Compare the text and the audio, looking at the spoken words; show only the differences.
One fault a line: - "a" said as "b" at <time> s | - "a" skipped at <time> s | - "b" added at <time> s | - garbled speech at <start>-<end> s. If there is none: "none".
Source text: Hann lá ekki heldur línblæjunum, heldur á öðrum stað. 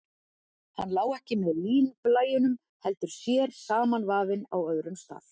- "heldur" said as "með" at 1.4 s
- "sér samanvafinn" added at 3.1 s